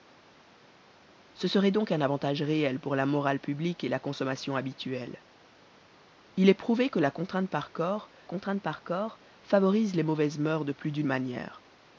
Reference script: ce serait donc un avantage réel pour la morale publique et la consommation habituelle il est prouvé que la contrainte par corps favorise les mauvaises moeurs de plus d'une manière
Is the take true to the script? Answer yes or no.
no